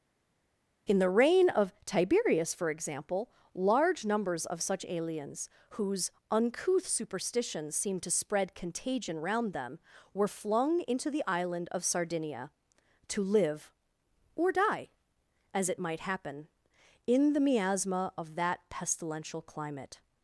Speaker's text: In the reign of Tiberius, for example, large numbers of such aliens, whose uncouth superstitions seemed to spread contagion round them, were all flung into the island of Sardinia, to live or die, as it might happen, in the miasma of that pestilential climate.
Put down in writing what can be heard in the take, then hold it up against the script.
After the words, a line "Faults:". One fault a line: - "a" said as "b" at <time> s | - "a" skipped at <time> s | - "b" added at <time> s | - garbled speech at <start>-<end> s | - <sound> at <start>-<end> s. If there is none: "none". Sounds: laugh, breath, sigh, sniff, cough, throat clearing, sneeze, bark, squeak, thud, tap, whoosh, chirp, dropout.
In the reign of Tiberius, for example, large numbers of such aliens, whose uncouth superstitions seemed to spread contagion round them, were flung into the island of Sardinia, to live or die, as it might happen, in the miasma of that pestilential climate.
Faults:
- "all" skipped at 10.3 s